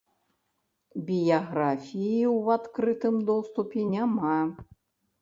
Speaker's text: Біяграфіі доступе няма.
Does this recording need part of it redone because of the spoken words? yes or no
yes